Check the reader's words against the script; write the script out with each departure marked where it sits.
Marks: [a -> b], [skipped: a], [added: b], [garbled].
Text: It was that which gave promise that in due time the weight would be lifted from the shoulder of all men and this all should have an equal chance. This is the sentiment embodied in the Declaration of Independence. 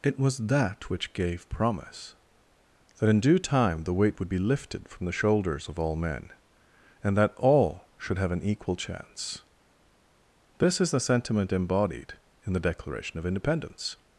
It was that which gave promise that in due time the weight would be lifted from the [shoulder -> shoulders] of all men and [this -> that] all should have an equal chance. This is the sentiment embodied in the Declaration of Independence.